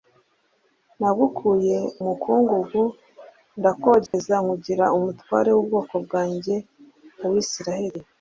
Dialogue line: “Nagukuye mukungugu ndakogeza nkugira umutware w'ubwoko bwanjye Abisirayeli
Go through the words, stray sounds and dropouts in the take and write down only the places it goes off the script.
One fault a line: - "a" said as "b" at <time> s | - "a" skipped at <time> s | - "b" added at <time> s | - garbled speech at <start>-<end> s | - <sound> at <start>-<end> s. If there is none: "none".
- dropout at 4.1-4.1 s